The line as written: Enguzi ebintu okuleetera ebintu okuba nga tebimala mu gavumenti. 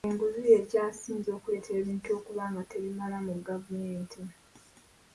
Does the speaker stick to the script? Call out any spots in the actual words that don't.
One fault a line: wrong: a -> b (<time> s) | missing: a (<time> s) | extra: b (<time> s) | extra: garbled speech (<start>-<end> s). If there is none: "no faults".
wrong: ebintu -> y'ekyasinze (0.5 s)